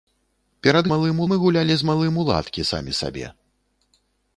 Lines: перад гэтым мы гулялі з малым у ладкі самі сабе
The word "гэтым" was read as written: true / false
false